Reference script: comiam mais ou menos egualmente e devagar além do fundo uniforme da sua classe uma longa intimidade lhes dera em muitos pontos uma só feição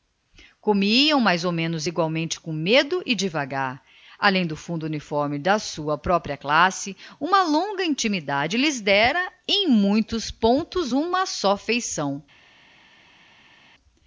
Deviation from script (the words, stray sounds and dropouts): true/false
true